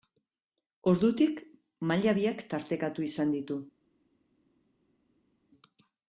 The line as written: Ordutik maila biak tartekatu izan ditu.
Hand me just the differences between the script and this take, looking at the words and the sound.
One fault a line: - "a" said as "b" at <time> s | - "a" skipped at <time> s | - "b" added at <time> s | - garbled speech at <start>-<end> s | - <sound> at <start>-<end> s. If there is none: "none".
none